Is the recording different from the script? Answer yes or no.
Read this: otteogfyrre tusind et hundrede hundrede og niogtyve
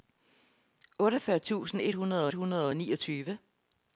no